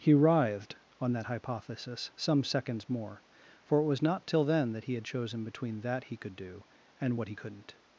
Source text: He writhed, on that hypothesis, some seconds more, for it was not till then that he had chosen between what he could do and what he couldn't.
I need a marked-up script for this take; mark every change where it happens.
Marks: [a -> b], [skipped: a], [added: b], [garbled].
He writhed, on that hypothesis, some seconds more, for it was not till then that he had chosen between [what -> that] he could do and what he couldn't.